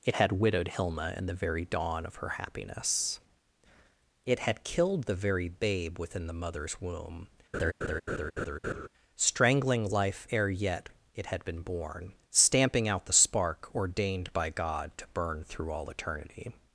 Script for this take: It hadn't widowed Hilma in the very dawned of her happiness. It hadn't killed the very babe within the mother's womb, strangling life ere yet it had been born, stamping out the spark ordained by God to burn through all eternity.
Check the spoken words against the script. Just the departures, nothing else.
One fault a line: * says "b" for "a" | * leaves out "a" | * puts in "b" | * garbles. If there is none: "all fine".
* says "had" for "hadn't"
* says "dawn" for "dawned"
* says "had" for "hadn't"